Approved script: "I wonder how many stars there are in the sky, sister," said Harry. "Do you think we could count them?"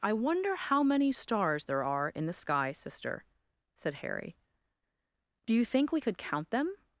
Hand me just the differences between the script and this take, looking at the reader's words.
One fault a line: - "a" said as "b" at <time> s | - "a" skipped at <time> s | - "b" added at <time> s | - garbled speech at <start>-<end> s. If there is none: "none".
none